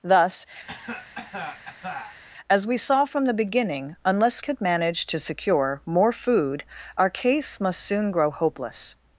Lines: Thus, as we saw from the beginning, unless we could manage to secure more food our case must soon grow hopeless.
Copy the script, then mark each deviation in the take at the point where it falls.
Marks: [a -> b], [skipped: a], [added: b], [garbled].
Thus, as we saw from the beginning, unless [skipped: we] could manage to secure more food our case must soon grow hopeless.